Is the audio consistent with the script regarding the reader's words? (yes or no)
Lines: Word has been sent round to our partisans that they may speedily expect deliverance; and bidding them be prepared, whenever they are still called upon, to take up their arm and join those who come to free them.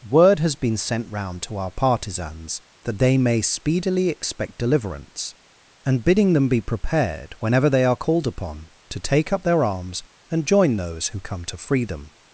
no